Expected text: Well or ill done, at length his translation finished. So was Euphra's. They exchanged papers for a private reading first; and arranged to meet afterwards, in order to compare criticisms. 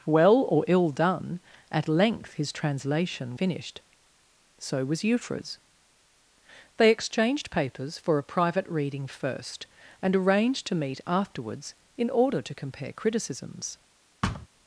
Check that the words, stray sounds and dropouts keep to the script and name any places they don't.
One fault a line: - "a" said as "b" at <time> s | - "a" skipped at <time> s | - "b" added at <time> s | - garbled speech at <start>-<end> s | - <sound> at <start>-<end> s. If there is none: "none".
- thud at 14.2-14.5 s